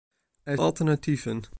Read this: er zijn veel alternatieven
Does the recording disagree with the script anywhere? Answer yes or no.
yes